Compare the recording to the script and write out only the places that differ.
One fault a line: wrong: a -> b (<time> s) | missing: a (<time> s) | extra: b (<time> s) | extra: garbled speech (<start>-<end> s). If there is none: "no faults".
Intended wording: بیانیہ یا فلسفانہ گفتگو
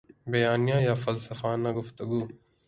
no faults